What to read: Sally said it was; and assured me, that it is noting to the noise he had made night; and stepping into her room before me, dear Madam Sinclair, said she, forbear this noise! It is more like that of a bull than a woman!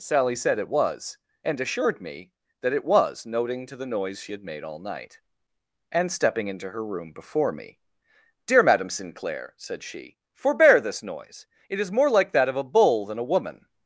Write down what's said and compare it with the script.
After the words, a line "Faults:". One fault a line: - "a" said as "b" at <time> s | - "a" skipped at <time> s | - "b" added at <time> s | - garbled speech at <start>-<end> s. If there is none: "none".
Sally said it was; and assured me, that it was noting to the noise she had made all night; and stepping into her room before me, dear Madam Sinclair, said she, forbear this noise! It is more like that of a bull than a woman!
Faults:
- "is" said as "was" at 2.9 s
- "he" said as "she" at 4.2 s
- "all" added at 4.6 s